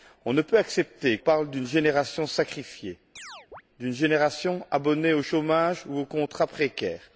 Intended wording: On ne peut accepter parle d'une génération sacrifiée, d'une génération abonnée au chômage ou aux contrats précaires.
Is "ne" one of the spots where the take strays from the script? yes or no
no